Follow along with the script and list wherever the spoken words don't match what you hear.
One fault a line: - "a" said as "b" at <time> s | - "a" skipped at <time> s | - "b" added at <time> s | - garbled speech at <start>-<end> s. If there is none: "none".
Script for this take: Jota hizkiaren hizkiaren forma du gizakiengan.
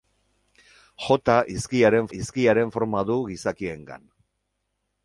none